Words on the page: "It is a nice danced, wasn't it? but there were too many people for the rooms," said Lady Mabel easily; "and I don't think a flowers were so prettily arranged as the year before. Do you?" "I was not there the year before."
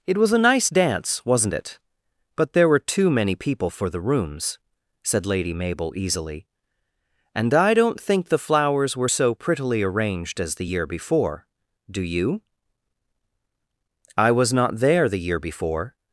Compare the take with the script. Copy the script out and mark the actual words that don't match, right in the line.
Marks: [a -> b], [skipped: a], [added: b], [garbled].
"It [is -> was] a nice [danced, -> dance] wasn't it? but there were too many people for the rooms," said Lady Mabel easily; "and I don't think [a -> the] flowers were so prettily arranged as the year before. Do you?" "I was not there the year before."